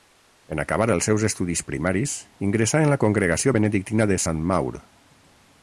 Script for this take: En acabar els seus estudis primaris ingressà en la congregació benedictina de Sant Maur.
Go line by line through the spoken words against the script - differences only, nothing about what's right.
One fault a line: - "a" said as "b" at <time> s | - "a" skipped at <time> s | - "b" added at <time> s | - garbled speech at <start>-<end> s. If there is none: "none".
none